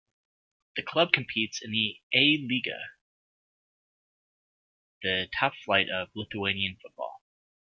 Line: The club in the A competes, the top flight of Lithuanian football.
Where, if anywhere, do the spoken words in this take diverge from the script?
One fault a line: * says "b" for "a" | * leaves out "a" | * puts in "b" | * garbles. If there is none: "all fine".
* puts in "competes"
* says "lyga" for "competes"